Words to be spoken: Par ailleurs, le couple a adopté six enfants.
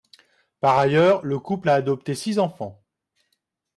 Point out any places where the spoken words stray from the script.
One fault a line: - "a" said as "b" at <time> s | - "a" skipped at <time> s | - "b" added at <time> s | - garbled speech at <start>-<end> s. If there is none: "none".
none